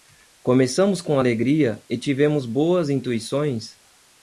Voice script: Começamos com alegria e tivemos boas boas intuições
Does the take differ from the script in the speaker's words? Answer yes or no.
yes